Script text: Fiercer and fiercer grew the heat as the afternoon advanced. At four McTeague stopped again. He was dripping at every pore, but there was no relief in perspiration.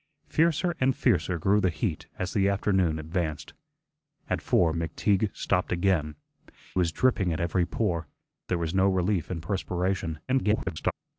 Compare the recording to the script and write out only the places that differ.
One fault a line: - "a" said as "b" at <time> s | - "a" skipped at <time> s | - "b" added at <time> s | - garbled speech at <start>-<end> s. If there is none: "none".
- "He" skipped at 6.2 s
- "but" skipped at 8.1 s
- garbled speech at 10.3-10.9 s